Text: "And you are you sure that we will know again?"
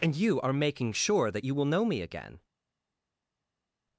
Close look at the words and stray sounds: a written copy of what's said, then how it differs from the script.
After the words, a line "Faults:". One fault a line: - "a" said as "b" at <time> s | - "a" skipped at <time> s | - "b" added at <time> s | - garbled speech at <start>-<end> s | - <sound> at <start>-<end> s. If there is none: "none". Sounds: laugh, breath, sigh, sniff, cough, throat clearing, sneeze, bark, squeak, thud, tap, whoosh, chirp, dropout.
"And you are making sure that you will know me again?"
Faults:
- "you" said as "making" at 0.5 s
- "we" said as "you" at 1.4 s
- "me" added at 1.8 s